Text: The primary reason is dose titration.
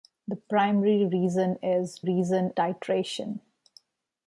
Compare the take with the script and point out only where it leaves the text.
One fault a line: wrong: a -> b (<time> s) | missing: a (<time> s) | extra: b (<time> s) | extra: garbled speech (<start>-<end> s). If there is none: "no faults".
wrong: dose -> reason (2.0 s)